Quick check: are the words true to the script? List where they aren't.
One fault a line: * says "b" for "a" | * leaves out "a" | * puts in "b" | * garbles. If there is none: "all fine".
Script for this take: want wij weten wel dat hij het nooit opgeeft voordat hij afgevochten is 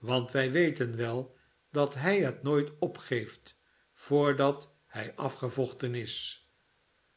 all fine